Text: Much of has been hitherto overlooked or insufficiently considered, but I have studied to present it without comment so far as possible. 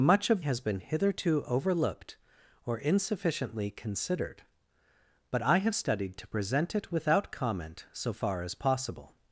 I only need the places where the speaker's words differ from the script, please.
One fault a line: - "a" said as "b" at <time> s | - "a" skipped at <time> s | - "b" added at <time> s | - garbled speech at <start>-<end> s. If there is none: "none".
none